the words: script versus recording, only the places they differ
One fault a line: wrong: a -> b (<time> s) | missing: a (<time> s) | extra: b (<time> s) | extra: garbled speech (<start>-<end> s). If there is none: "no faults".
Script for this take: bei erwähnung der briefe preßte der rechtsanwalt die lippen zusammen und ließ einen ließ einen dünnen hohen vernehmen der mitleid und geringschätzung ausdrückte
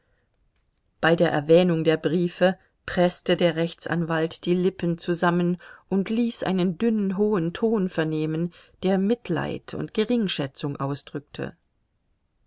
extra: der (1.1 s)
missing: ließ einen (6.8 s)
extra: ton (7.5 s)